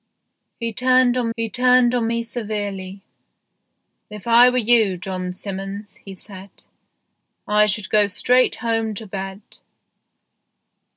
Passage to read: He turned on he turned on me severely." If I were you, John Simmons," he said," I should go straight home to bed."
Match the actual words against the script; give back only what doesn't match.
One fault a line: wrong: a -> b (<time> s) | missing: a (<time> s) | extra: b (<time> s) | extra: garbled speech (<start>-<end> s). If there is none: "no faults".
no faults